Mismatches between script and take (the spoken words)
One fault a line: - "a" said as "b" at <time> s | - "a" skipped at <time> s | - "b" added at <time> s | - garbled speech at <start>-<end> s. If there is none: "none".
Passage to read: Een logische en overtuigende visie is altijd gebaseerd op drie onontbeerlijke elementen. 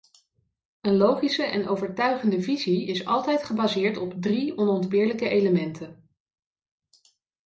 none